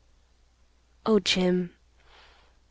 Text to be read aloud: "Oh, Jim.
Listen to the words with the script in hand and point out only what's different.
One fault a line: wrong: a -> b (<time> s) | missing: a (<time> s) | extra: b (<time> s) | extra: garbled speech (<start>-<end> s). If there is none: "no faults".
no faults